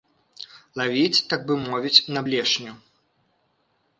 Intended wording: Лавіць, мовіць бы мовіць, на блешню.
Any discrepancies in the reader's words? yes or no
yes